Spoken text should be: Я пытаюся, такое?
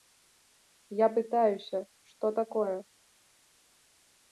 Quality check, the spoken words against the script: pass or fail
fail